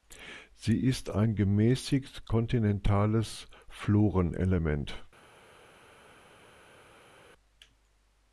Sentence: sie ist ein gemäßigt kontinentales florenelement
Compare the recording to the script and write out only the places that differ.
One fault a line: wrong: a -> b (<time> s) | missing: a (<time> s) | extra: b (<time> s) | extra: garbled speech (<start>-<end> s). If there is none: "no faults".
no faults